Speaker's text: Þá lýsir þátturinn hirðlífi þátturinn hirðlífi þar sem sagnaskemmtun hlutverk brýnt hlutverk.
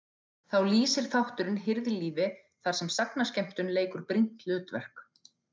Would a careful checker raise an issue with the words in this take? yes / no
yes